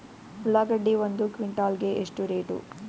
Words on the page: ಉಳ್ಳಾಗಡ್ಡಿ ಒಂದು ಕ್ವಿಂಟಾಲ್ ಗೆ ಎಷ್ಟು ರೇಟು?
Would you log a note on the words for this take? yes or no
no